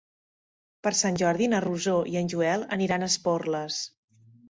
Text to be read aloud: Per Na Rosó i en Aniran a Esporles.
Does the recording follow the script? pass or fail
fail